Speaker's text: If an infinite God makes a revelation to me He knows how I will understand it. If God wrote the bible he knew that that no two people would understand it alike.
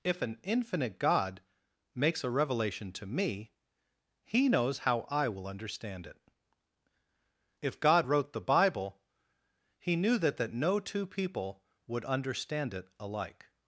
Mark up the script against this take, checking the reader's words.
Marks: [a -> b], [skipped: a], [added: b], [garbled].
If an infinite God makes a revelation to me He knows how I will understand it. If God wrote the bible he knew that that no two people would understand it alike.